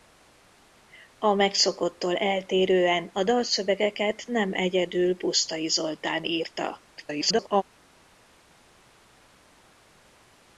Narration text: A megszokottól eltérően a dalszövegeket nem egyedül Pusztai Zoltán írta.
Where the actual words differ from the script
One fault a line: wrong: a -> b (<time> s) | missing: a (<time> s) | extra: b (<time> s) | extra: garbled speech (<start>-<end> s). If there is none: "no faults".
extra: garbled speech (7.0-7.6 s)